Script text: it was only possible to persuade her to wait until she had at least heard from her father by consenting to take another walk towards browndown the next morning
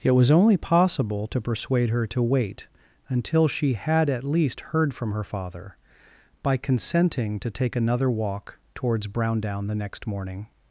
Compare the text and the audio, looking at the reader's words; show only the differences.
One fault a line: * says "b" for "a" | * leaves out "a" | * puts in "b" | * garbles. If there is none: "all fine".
all fine